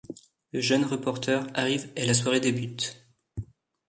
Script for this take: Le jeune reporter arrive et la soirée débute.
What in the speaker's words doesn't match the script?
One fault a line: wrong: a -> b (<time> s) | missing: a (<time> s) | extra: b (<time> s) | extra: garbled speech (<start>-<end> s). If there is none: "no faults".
no faults